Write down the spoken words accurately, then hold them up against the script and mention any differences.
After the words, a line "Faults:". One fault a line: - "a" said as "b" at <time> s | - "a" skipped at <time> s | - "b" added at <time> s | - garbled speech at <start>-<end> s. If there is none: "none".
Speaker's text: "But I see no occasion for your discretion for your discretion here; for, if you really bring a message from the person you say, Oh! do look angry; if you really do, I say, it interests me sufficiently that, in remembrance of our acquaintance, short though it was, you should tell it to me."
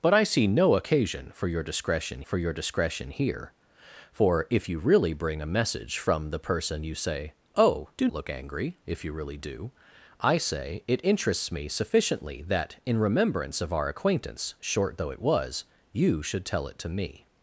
"But I see no occasion for your discretion for your discretion here; for, if you really bring a message from the person you say, Oh! do look angry; if you really do, I say, it interests me sufficiently that, in remembrance of our acquaintance, short though it was, you should tell it to me."
Faults:
none